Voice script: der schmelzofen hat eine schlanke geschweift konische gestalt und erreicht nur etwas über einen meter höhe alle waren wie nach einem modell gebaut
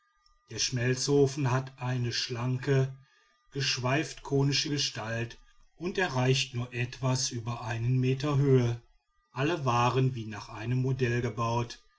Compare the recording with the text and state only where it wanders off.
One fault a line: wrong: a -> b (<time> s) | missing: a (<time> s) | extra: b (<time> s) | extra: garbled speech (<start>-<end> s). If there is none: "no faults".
no faults